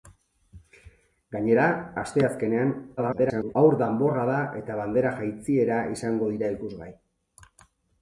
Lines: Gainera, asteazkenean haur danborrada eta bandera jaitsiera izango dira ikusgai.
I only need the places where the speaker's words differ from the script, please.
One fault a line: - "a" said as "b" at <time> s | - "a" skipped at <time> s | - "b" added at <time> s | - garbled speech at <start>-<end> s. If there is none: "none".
- garbled speech at 3.0-3.5 s